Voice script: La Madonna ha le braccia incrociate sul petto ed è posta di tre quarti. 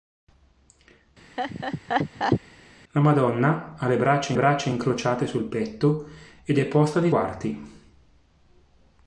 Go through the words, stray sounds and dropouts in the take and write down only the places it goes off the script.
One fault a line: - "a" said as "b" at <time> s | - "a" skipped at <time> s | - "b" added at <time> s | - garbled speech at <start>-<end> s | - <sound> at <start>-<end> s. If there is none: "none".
- laugh at 1.4-2.4 s
- "braccia" added at 4.3 s
- "tre" skipped at 7.1 s